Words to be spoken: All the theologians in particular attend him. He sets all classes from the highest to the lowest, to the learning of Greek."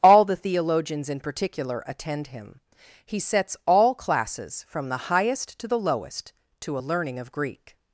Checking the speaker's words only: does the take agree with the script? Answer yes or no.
no